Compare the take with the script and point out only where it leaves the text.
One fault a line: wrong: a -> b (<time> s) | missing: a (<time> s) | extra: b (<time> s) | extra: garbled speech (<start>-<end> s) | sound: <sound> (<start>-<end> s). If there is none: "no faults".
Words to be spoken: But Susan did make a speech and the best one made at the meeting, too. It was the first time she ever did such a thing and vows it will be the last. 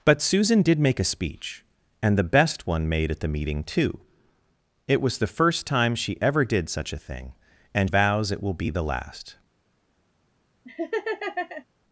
sound: laugh (10.6-11.6 s)